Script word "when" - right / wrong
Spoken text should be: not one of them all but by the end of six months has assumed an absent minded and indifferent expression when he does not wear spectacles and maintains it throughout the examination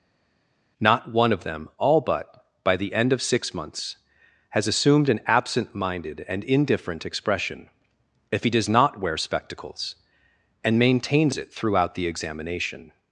wrong